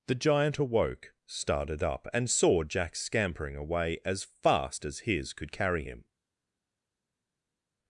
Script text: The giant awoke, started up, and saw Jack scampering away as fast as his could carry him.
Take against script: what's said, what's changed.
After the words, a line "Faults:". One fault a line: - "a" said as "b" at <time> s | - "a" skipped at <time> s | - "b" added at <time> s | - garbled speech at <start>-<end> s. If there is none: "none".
The giant awoke, started up, and saw Jack scampering away as fast as his could carry him.
Faults:
none